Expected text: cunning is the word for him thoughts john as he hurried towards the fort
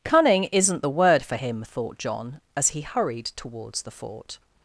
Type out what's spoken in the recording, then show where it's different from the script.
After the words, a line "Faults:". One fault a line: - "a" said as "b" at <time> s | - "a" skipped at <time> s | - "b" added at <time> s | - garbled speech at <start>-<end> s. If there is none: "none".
cunning isn't the word for him thought john as he hurried towards the fort
Faults:
- "is" said as "isn't" at 0.5 s
- "thoughts" said as "thought" at 1.7 s